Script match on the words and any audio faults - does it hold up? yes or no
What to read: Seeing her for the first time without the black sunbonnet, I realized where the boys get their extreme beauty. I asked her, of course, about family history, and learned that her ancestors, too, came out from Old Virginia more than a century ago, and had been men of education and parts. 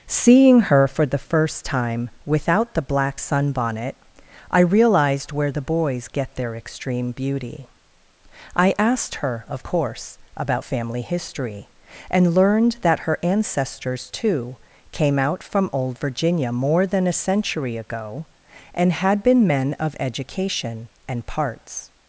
yes